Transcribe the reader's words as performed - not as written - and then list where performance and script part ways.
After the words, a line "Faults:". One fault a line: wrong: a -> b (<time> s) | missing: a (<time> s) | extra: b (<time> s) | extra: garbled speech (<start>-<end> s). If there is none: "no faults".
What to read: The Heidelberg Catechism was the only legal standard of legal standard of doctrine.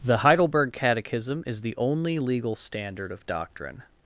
The Heidelberg Catechism is the only legal standard of doctrine.
Faults:
wrong: was -> is (1.4 s)
missing: legal standard of (3.2 s)